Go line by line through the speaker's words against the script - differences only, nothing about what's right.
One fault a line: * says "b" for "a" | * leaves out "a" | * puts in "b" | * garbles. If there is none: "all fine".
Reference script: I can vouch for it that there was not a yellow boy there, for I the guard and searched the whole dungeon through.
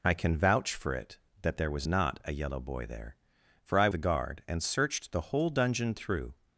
all fine